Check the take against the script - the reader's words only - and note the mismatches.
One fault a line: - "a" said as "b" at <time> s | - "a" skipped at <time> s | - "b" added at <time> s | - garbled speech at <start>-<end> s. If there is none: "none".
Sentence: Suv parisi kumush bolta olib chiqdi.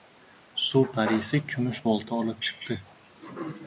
none